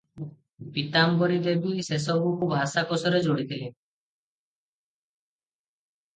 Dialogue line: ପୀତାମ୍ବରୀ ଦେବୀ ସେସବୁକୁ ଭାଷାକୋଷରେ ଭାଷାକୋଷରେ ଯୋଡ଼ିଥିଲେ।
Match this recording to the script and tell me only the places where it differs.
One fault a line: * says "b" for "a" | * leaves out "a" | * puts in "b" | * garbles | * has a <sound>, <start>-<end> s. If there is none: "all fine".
* leaves out "ଭାଷାକୋଷରେ"